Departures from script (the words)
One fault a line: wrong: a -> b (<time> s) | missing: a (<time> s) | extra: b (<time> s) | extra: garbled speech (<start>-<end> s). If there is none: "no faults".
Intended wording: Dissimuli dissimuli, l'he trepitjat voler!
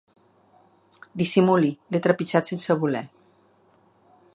missing: dissimuli (1.7 s)
extra: sense (2.5 s)